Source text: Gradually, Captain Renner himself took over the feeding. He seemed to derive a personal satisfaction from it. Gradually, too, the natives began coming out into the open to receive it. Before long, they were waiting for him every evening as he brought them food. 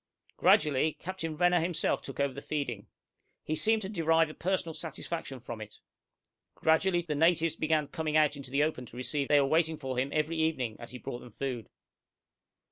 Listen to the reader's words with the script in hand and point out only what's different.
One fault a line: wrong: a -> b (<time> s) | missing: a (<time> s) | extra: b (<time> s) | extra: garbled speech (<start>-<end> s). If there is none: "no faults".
missing: too (7.0 s)
missing: it Before long (9.3 s)